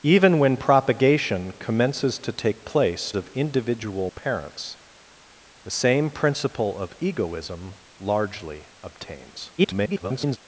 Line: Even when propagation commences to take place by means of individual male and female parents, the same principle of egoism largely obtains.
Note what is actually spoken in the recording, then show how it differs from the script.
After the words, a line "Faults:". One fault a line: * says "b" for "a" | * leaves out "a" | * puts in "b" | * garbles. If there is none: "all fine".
Even when propagation commences to take place of individual parents, the same principle of egoism largely obtains. [garbled]
Faults:
* leaves out "by means"
* leaves out "male and female"
* garbles